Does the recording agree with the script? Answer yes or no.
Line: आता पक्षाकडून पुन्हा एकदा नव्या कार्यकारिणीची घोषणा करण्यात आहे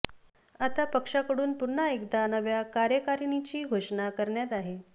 yes